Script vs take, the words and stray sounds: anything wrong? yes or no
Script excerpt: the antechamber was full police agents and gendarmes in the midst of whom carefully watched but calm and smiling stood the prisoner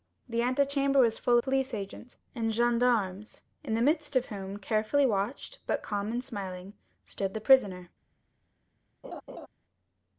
yes